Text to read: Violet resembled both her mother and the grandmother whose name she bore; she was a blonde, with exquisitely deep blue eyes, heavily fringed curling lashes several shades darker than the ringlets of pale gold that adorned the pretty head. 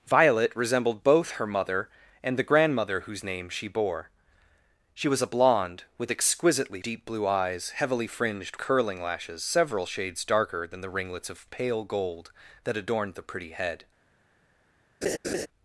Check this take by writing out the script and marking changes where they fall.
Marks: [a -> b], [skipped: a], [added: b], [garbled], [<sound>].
Violet resembled both her mother and the grandmother whose name she bore; she was a blonde, with exquisitely deep blue eyes, heavily fringed curling lashes several shades darker than the ringlets of pale gold that adorned the pretty head. [laugh]